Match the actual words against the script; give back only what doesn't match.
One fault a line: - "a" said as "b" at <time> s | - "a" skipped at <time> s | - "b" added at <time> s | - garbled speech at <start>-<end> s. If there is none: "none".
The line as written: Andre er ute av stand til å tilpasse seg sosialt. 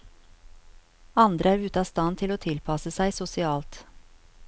none